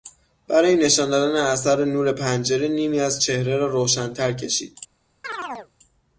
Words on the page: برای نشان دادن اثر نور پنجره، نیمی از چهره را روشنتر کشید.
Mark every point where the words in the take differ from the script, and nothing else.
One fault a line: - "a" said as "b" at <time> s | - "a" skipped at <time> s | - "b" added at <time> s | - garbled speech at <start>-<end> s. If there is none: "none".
none